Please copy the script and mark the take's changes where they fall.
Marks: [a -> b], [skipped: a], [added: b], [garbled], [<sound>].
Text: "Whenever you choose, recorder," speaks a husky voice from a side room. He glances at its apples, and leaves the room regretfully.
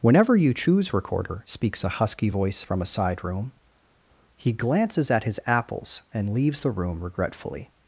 "Whenever you choose, recorder," speaks a husky voice from a side room. He glances at [its -> his] apples, and leaves the room regretfully.